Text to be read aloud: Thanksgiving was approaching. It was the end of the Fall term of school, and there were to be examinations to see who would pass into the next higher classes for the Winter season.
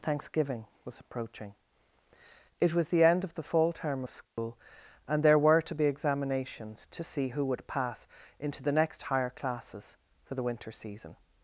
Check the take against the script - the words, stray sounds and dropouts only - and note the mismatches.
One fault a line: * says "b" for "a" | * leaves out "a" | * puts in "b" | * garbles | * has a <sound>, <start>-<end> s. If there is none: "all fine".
* has a dropout, 4.2-4.4 s